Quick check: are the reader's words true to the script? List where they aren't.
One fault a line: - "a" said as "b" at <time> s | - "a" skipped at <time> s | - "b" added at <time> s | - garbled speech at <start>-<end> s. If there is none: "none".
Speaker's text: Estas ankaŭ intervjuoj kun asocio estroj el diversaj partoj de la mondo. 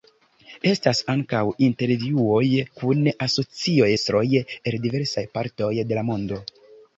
none